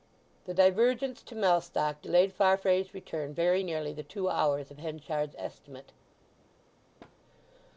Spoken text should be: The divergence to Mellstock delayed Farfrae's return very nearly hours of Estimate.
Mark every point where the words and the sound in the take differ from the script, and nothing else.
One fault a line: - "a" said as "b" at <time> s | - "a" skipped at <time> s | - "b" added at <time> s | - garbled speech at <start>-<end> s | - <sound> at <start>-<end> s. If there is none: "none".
- "the two" added at 3.9 s
- "Henchard's" added at 4.8 s
- thud at 7.0-7.2 s